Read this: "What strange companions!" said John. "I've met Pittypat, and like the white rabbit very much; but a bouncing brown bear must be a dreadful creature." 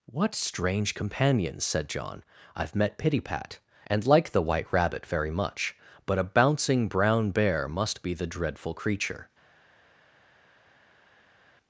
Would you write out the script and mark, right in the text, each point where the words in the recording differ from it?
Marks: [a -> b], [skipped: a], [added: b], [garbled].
"What strange companions!" said John. "I've met Pittypat, and like the white rabbit very much; but a bouncing brown bear must be [a -> the] dreadful creature."